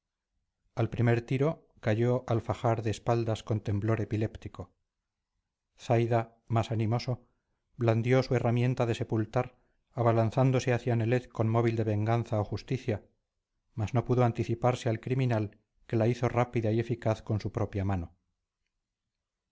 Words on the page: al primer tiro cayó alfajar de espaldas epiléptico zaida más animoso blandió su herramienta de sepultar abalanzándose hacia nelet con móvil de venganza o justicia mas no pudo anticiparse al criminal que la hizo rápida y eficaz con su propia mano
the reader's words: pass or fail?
fail